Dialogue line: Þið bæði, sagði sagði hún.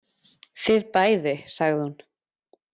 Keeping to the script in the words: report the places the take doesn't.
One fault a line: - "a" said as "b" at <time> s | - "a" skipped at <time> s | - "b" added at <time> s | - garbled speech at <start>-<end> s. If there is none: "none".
- "sagði" skipped at 1.8 s